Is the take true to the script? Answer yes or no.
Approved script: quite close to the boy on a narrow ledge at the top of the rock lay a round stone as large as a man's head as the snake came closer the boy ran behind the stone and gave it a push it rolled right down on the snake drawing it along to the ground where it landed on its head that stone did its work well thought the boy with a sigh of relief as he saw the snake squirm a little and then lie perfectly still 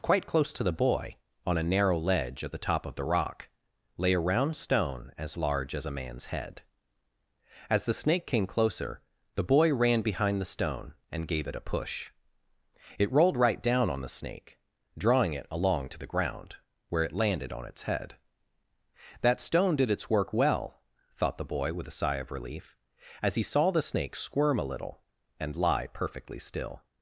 no